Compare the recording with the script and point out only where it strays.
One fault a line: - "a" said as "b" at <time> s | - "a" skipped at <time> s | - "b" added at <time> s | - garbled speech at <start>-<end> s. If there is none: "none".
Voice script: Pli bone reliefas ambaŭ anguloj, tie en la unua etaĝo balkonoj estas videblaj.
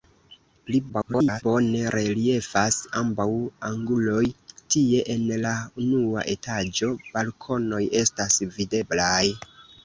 - garbled speech at 0.9-1.4 s